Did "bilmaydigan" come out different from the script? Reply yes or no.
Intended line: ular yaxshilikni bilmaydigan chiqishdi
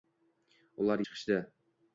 yes